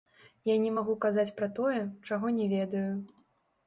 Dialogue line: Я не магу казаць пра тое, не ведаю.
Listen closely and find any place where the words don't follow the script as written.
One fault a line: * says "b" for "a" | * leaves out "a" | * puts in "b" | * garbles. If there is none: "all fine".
* puts in "чаго"